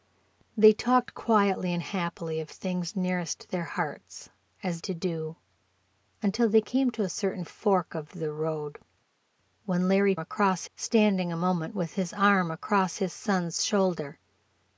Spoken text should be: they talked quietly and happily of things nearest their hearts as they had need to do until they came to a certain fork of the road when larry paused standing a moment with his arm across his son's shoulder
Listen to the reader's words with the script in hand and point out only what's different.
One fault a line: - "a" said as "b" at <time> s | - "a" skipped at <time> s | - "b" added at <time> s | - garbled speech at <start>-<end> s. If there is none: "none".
- "they had need" skipped at 4.8 s
- "paused" said as "across" at 10.2 s